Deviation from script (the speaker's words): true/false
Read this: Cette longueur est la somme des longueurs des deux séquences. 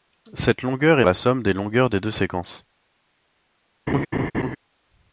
false